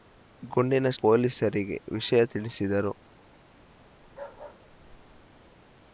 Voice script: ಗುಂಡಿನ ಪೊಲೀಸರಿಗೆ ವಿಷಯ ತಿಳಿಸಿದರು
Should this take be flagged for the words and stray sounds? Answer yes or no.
yes